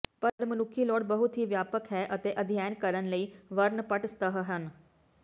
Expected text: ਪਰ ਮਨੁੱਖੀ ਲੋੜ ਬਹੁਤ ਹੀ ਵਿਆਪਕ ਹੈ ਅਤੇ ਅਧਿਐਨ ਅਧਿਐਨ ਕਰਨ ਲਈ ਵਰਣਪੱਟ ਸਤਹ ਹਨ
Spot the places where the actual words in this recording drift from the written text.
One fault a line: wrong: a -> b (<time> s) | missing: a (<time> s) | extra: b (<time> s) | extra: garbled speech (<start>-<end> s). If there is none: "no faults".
missing: ਅਧਿਐਨ (2.7 s)